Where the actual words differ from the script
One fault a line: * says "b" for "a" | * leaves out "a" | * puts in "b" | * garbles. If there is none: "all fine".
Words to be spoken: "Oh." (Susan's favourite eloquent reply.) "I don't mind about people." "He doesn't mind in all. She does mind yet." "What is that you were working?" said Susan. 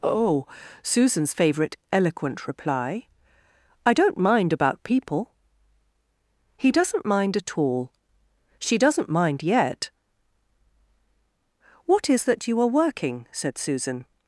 * says "at" for "in"
* says "doesn't" for "does"
* says "are" for "were"